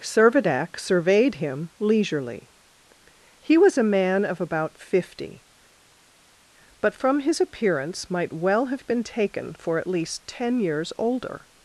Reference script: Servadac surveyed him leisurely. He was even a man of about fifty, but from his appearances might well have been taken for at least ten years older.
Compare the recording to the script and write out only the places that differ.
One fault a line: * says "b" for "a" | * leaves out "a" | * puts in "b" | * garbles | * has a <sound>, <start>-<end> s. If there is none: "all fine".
* leaves out "even"
* says "appearance" for "appearances"